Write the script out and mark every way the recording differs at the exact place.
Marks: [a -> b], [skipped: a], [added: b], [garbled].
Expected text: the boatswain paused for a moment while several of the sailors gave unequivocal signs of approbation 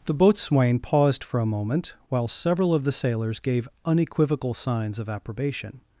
the boatswain paused for a moment while several of the sailors gave unequivocal signs of approbation